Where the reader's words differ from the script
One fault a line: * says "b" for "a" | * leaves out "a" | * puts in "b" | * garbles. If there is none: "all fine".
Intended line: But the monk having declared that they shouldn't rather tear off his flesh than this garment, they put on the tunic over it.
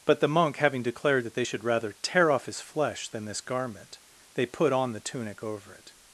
* says "should" for "shouldn't"